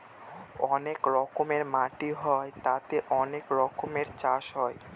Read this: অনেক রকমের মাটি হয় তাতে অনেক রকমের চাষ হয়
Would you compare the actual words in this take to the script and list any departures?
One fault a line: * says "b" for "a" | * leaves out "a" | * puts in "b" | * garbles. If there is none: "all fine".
all fine